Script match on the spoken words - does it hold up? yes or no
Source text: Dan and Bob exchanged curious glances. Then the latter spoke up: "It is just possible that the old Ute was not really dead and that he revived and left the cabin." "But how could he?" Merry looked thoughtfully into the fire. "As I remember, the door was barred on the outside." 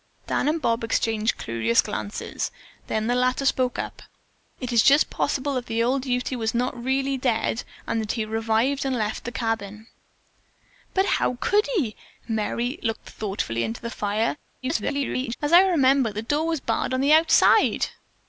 no